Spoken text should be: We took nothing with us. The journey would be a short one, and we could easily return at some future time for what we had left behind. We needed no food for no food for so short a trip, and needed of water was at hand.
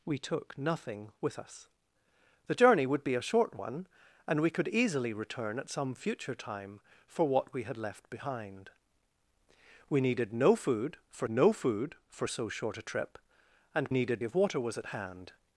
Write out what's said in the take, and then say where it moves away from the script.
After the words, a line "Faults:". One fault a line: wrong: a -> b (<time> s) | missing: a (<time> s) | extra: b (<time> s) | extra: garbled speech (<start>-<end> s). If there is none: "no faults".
We took nothing with us. The journey would be a short one, and we could easily return at some future time for what we had left behind. We needed no food for no food for so short a trip, and needed of water was at hand.
Faults:
no faults